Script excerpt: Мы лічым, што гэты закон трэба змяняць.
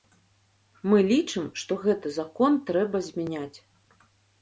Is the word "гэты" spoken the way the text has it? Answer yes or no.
yes